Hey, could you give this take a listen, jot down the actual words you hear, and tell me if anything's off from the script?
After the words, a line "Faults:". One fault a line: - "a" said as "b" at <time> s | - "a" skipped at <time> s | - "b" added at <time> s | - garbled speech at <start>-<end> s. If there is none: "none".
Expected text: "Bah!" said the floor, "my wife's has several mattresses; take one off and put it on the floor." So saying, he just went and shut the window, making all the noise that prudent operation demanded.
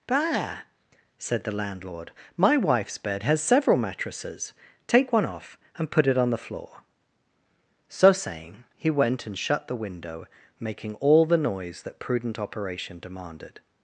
"Bah!" said the landlord, "my wife's bed has several mattresses; take one off and put it on the floor." So saying, he went and shut the window, making all the noise that prudent operation demanded.
Faults:
- "floor" said as "landlord" at 1.5 s
- "bed" added at 3.0 s
- "just" skipped at 8.9 s